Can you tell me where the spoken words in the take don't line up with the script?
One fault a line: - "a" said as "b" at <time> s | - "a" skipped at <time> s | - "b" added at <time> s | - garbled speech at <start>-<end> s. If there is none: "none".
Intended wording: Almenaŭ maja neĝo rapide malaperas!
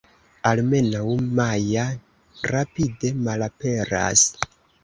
- "neĝo" skipped at 1.8 s